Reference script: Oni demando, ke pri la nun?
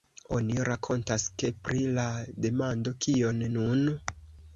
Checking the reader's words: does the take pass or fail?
fail